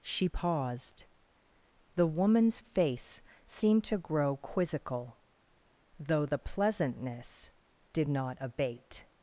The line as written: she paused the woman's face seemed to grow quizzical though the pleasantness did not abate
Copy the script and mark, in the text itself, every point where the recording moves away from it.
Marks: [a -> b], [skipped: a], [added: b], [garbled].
she paused the woman's face seemed to grow quizzical though the pleasantness did not abate